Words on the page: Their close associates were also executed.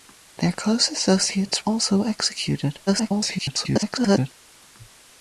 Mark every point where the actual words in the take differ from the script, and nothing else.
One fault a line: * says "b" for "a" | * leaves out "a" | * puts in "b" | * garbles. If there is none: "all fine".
* leaves out "were"
* garbles